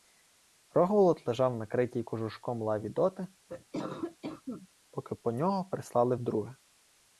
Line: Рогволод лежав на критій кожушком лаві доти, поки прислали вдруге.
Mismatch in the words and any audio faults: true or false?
true